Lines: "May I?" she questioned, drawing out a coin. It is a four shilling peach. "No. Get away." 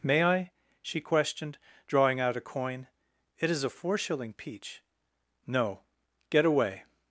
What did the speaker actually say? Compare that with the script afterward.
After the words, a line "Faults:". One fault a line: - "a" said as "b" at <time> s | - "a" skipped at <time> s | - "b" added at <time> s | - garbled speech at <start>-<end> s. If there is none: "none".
"May I?" she questioned, drawing out a coin. It is a four shilling peach. "No. Get away."
Faults:
none